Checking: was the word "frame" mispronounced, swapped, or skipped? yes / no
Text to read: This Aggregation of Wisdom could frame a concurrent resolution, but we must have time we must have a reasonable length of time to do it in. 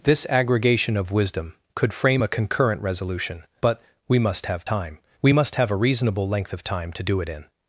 no